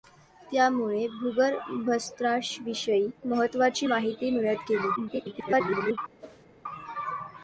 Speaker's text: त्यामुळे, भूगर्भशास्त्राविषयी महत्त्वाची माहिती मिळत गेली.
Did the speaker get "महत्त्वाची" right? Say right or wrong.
right